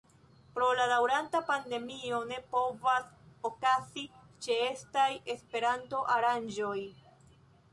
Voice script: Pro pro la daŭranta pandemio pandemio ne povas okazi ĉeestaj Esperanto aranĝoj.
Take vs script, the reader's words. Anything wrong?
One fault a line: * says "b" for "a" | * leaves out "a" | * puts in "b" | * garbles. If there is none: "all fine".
* leaves out "pro"
* leaves out "pandemio"